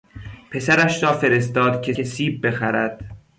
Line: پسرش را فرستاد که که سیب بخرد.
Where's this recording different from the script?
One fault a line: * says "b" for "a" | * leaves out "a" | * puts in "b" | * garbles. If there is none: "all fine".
all fine